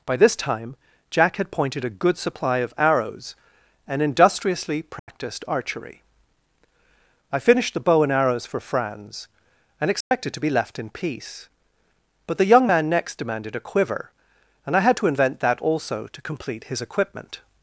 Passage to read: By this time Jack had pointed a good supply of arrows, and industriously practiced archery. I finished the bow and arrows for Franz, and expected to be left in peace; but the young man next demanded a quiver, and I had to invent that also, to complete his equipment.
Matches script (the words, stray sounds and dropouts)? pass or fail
fail